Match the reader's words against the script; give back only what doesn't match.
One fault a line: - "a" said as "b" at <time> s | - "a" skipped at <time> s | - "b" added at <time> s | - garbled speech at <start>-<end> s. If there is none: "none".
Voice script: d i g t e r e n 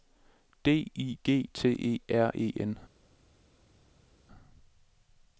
none